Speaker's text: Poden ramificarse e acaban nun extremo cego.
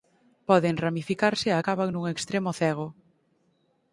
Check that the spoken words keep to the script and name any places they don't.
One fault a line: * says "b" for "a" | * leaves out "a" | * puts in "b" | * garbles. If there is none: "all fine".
all fine